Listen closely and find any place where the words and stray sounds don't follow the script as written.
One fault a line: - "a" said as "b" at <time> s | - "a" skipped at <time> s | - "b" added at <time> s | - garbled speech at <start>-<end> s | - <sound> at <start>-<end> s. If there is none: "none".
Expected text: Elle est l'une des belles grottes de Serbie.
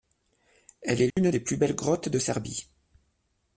- dropout at 1.1-1.2 s
- "plus" added at 1.4 s